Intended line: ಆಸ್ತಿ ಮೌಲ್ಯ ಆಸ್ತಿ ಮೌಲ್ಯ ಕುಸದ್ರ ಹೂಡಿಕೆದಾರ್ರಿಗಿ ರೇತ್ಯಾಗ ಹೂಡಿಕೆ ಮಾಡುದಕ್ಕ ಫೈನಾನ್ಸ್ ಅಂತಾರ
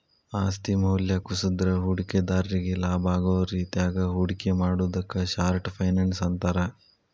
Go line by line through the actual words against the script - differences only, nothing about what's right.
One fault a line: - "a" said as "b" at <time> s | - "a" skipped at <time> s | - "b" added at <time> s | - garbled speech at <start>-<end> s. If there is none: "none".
- "ಆಸ್ತಿ ಮೌಲ್ಯ" skipped at 1.1 s
- "ಲಾಭಾಗೋ" added at 2.8 s
- "ಶಾರ್ಟ್" added at 5.4 s